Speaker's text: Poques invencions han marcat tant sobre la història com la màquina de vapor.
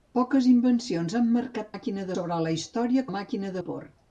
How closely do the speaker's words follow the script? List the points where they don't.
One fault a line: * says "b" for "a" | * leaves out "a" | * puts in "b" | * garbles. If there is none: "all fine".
* says "màquina" for "tant"
* leaves out "com"
* leaves out "de"